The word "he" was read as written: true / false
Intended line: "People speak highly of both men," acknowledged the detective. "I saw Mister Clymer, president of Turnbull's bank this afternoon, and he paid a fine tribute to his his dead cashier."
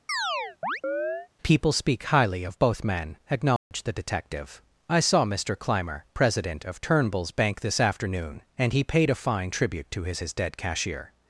true